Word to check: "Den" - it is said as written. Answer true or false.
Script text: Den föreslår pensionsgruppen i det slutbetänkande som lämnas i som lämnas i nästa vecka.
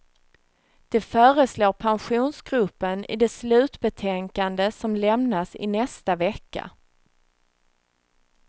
false